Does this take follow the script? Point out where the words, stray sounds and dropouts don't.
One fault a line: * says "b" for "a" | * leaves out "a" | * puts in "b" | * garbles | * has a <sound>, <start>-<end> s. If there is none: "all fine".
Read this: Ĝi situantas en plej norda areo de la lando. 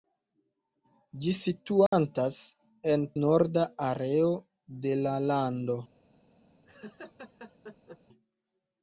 * has a dropout, 1.9-1.9 s
* leaves out "plej"
* has a laugh, 6.6-8.0 s